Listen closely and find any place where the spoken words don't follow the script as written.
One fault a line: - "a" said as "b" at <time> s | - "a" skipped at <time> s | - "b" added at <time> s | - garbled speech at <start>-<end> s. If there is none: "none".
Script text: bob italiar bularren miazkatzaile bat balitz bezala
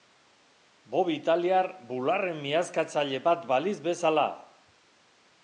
none